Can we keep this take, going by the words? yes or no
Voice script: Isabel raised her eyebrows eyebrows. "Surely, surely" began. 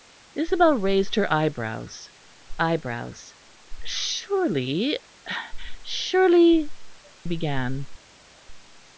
yes